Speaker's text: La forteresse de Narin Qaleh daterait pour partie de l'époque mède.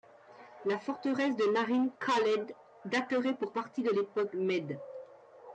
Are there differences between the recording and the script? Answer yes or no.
no